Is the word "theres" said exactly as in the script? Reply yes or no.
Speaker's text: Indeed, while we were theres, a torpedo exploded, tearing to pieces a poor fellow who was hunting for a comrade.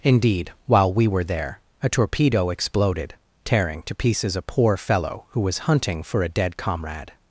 no